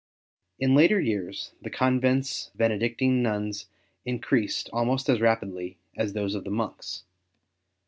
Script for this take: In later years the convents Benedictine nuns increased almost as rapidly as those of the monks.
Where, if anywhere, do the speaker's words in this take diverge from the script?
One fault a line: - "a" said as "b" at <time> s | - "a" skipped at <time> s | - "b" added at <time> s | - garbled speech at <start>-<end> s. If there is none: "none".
none